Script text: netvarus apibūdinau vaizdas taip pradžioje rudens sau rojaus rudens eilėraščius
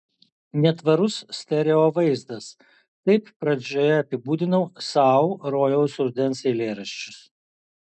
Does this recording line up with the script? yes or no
no